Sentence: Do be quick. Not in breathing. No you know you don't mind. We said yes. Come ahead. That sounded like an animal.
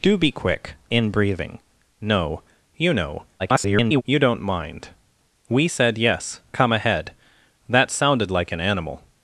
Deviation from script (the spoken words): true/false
true